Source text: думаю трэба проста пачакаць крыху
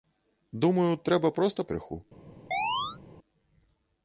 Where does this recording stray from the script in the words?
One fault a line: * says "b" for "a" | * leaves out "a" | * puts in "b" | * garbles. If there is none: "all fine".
* leaves out "пачакаць"